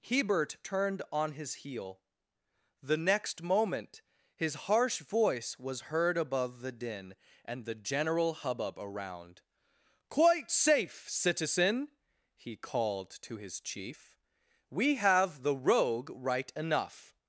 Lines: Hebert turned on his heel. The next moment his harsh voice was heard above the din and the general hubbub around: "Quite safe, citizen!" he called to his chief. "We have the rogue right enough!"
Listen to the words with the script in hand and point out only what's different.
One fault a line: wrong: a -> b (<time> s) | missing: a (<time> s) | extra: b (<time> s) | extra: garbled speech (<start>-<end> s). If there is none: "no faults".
no faults